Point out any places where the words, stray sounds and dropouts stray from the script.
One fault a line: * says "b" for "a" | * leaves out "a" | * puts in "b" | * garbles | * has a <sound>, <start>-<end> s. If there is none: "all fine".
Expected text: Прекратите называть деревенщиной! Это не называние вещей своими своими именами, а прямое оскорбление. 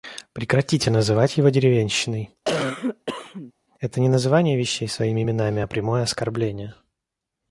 * puts in "его"
* has a cough, 2.4-3.5 s
* leaves out "своими"